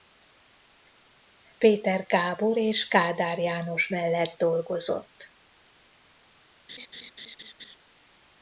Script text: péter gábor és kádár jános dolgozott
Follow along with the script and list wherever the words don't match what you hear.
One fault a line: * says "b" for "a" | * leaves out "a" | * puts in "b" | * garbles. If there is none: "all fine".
* puts in "mellett"